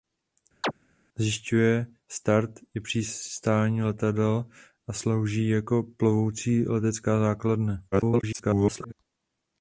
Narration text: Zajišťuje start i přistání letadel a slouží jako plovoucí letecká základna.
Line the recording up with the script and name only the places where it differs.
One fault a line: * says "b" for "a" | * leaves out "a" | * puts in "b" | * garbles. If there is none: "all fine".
* garbles